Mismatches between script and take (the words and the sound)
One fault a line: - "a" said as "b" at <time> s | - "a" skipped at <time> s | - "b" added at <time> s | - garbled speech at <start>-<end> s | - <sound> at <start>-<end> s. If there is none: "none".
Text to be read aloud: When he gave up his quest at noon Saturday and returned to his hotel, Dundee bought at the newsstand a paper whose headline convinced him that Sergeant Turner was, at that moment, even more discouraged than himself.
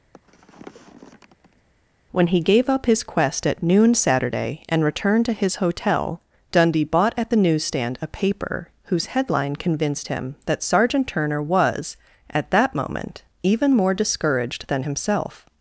- sniff at 0.1-1.6 s